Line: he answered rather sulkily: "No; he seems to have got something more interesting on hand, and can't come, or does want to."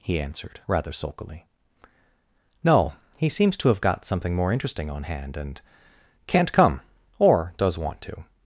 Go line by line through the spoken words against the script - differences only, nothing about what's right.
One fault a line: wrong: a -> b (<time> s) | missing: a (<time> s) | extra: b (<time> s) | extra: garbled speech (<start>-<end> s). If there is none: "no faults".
no faults